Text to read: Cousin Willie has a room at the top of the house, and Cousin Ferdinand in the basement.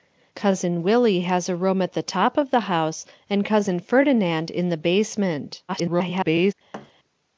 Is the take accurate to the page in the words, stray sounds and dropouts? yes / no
no